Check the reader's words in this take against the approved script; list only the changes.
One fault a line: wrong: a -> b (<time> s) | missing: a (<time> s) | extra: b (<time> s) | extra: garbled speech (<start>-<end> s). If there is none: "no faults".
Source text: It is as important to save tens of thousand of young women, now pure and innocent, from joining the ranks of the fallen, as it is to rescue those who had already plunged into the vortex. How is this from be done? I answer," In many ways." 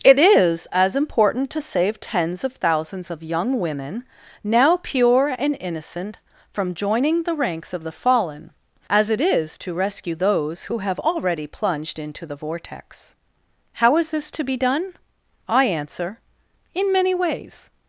wrong: thousand -> thousands (2.5 s)
wrong: had -> have (10.8 s)
wrong: from -> to (14.3 s)